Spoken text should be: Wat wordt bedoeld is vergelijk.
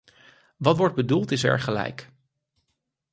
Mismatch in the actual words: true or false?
false